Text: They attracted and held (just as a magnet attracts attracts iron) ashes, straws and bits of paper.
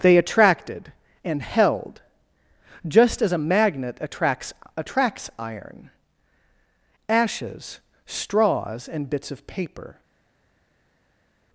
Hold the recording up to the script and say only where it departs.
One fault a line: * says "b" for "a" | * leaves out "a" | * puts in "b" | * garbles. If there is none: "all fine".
all fine